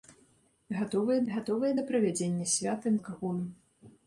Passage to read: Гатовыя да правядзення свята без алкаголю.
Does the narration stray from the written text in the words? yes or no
yes